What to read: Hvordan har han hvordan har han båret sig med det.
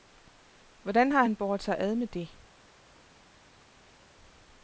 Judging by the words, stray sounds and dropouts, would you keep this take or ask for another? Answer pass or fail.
fail